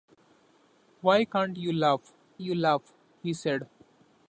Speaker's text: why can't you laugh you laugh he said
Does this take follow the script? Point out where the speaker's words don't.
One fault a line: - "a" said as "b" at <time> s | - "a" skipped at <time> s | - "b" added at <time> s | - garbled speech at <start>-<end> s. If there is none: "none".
none